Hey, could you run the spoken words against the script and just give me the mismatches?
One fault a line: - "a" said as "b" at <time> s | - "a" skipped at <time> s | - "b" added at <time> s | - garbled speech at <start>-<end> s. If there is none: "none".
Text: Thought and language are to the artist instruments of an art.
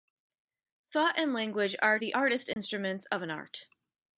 - "to" skipped at 2.0 s